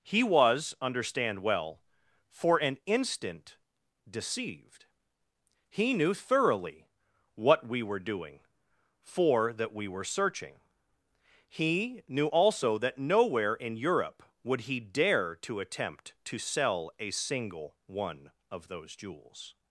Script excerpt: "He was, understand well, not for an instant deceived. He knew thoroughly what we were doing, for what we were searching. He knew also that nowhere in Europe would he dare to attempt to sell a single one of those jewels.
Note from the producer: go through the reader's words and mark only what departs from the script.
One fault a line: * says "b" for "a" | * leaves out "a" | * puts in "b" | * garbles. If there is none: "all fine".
* leaves out "not"
* says "that" for "what"